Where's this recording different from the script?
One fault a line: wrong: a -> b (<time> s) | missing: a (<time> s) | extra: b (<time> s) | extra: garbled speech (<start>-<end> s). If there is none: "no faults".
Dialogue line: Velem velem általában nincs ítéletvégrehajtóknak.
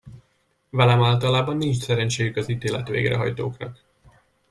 missing: velem (1.0 s)
extra: szerencséjük az (1.8 s)